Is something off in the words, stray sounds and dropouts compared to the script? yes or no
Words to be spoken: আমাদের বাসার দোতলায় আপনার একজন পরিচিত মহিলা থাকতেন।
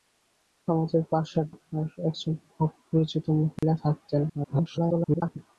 yes